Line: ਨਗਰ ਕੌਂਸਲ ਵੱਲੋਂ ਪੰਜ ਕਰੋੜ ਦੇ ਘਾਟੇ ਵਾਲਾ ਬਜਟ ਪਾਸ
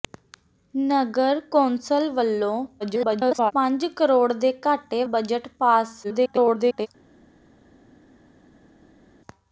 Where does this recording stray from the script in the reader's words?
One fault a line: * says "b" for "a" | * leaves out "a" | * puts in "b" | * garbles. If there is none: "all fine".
* garbles
* leaves out "ਵਾਲਾ"
* garbles